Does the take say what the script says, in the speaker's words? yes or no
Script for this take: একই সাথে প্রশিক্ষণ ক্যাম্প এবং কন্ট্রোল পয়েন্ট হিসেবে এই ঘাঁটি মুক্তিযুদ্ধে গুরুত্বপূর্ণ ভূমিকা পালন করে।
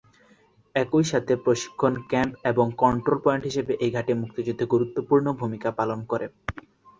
yes